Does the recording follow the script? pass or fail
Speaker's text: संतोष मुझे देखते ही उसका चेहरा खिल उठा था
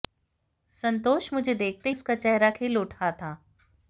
fail